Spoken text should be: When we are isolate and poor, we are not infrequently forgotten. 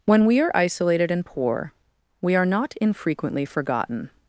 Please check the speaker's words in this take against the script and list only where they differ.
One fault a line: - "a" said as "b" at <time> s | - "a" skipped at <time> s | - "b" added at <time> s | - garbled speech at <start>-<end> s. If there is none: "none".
- "isolate" said as "isolated" at 0.6 s